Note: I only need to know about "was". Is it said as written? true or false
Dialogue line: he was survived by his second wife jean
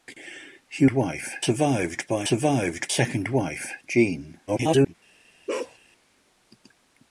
false